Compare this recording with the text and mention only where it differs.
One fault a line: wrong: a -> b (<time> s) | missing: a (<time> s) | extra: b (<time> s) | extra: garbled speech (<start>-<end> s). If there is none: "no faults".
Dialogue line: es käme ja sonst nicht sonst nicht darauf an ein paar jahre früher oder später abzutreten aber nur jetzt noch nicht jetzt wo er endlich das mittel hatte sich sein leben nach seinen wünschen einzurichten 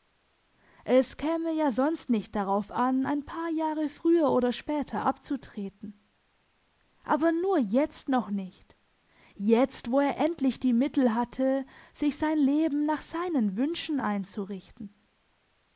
missing: sonst nicht (2.4 s)
wrong: das -> die (10.6 s)